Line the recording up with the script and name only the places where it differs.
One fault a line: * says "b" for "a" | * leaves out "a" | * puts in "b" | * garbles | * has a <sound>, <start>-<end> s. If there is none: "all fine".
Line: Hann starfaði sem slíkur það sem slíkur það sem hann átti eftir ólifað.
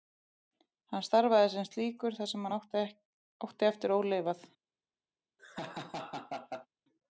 * leaves out "slíkur það sem"
* has a laugh, 5.4-6.7 s